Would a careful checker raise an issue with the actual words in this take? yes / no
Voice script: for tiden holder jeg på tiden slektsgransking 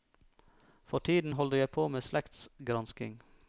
yes